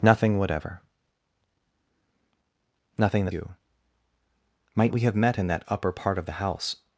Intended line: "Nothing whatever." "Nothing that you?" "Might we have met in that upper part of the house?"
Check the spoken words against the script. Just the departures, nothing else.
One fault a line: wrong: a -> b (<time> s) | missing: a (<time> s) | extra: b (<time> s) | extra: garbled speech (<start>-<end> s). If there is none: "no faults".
no faults